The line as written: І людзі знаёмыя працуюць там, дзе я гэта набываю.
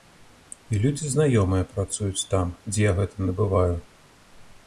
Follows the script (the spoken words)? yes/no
yes